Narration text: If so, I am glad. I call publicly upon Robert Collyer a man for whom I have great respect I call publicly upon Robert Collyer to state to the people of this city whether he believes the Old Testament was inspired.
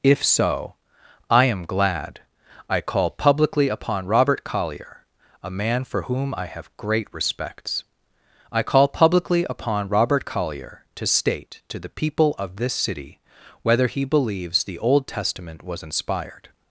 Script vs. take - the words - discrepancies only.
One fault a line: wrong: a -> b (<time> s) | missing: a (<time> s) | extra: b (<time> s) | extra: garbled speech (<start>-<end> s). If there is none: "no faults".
wrong: respect -> respects (7.1 s)